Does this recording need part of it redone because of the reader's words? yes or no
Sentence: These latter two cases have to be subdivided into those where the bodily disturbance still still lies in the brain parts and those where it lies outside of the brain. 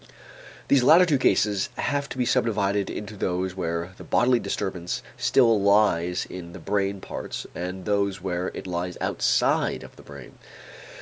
yes